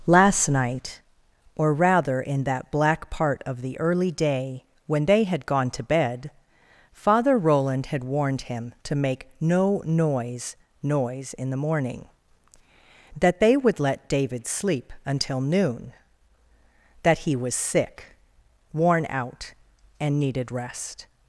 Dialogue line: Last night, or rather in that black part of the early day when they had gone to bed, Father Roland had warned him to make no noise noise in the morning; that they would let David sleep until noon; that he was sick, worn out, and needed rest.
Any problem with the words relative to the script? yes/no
no